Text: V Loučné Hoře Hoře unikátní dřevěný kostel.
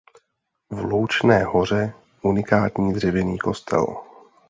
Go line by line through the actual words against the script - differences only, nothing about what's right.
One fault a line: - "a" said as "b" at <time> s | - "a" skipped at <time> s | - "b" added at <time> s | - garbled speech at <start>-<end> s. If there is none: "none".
- "Hoře" skipped at 1.9 s